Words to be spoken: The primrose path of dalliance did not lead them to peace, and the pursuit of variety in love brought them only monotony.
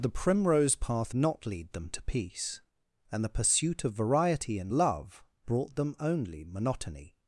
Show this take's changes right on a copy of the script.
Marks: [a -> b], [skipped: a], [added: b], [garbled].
The primrose path [skipped: of dalliance did] not lead them to peace, and the pursuit of variety in love brought them only monotony.